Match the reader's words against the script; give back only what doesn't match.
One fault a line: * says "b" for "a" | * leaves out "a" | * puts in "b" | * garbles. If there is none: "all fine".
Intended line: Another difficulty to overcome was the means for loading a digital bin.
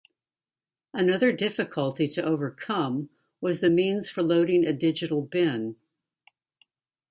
all fine